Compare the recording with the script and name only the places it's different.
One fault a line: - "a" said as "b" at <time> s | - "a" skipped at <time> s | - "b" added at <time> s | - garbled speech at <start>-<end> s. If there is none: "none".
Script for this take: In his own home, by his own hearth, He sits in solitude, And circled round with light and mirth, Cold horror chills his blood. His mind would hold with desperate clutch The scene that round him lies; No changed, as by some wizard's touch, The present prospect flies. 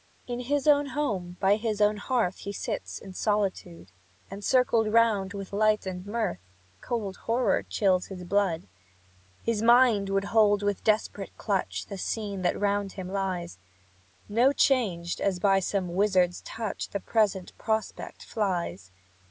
none